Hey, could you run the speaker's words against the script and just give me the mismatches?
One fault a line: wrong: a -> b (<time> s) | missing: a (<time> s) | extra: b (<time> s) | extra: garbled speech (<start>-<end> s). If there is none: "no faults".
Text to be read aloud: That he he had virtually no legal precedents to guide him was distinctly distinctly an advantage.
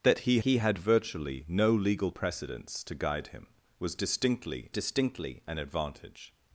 no faults